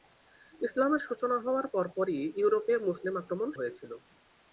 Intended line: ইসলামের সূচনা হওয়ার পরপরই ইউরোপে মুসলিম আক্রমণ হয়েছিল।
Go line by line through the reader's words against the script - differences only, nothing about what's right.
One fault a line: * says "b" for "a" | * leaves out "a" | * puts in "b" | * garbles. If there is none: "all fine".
all fine